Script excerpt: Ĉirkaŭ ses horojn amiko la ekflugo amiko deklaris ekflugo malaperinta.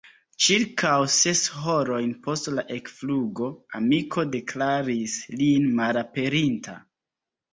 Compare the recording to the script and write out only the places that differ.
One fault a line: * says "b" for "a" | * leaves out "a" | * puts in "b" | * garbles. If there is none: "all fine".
* says "post" for "amiko"
* says "lin" for "ekflugo"